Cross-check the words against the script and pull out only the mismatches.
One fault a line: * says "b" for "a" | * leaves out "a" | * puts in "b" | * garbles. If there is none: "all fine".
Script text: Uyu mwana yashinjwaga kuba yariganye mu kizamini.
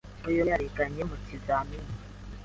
* leaves out "mwana yashinjwaga kuba"